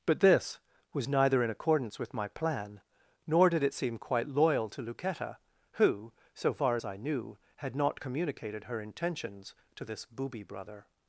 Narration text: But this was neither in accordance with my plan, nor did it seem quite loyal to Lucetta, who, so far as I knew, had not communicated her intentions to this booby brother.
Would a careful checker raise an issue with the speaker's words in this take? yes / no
no